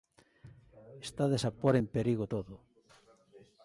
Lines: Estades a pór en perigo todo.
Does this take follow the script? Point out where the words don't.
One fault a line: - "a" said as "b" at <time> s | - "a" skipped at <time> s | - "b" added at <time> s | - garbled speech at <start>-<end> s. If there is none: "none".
none